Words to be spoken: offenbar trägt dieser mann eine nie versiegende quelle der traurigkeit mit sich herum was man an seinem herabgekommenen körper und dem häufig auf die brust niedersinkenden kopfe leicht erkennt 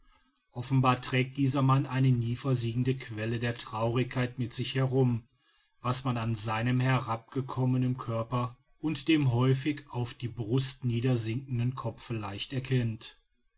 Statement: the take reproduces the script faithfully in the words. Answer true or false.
true